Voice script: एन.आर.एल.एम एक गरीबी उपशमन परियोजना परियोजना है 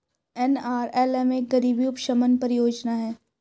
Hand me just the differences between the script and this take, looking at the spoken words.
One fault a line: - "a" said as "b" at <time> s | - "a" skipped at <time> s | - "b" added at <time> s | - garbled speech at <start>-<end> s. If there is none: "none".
- "परियोजना" skipped at 3.0 s